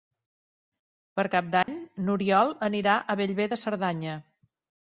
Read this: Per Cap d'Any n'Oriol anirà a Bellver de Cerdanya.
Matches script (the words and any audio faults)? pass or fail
fail